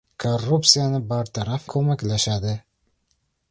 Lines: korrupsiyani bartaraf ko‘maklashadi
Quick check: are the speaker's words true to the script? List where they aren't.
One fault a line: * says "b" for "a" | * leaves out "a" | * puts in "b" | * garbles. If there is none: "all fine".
all fine